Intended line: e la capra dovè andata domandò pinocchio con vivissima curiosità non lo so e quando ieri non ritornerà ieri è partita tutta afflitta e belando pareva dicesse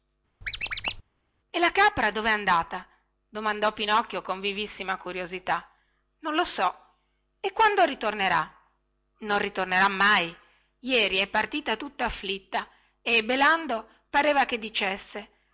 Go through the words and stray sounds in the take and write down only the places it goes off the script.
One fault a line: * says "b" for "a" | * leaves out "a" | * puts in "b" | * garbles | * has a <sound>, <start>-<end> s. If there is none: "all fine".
* has a squeak, 0.4-1.0 s
* says "ritornerà" for "ieri"
* puts in "mai"
* puts in "che"